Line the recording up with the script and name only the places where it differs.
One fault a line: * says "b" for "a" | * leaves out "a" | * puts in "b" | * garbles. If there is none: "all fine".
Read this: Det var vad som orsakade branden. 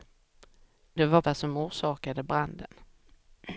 all fine